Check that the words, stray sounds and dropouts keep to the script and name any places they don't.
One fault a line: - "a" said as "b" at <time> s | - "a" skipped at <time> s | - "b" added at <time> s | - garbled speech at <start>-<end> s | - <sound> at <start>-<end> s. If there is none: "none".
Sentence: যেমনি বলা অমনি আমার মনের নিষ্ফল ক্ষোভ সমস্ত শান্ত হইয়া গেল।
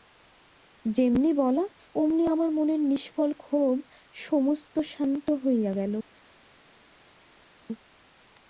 none